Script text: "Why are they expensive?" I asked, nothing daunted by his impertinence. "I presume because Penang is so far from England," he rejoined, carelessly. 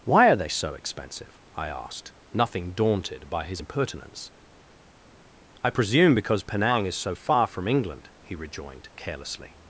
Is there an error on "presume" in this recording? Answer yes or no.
no